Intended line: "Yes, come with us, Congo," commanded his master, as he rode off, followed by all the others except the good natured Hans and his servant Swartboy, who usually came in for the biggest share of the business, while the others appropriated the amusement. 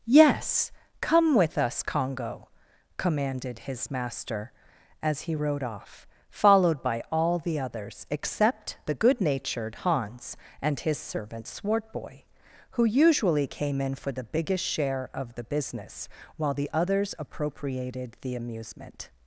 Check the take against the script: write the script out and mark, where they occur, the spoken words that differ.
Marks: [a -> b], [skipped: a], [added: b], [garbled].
"Yes, come with us, Congo," commanded his master, as he rode off, followed by all the others except the good natured Hans and his servant Swartboy, who usually came in for the biggest share of the business, while the others appropriated the amusement.